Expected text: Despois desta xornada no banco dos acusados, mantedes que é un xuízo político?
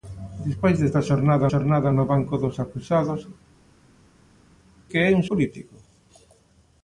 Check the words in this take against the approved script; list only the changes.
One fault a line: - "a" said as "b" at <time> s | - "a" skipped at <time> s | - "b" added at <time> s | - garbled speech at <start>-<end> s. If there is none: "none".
- "xornada" added at 1.5 s
- "mantedes" skipped at 3.2 s
- "xuízo" skipped at 5.2 s